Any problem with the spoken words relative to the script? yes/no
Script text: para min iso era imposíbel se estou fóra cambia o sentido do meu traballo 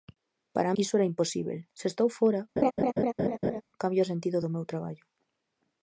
yes